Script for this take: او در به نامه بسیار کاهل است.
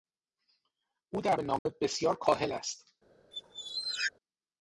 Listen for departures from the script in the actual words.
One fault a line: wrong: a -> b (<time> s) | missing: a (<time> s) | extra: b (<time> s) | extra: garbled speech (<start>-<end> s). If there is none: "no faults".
no faults